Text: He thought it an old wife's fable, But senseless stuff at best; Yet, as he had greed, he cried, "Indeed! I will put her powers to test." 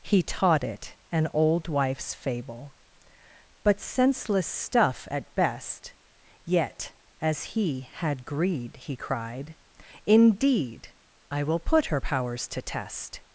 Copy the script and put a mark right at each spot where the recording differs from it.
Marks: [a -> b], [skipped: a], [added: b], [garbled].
He [thought -> taught] it an old wife's fable, But senseless stuff at best; Yet, as he had greed, he cried, "Indeed! I will put her powers to test."